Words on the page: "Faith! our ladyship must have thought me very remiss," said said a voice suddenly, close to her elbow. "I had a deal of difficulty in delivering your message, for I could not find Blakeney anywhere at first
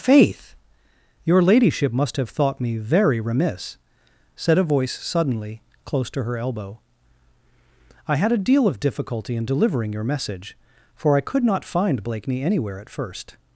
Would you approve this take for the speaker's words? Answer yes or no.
no